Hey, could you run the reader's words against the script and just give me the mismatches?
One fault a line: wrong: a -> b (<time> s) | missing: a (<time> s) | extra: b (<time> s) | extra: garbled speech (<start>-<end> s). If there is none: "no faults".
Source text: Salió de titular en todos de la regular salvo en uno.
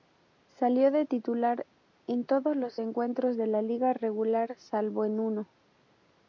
extra: los encuentros (2.6 s)
extra: liga (3.6 s)